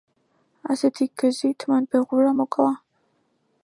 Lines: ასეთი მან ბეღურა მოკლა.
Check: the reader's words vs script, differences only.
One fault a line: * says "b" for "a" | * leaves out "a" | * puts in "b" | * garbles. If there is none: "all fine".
* puts in "გზით"